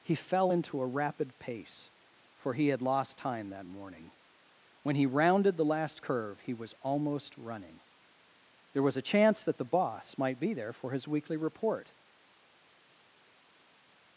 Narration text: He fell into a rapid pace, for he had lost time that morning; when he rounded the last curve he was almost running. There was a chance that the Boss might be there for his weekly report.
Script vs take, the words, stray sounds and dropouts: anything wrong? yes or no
no